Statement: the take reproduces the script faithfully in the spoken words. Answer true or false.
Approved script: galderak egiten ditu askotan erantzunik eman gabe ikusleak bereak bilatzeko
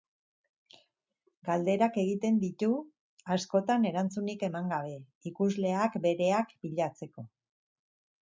true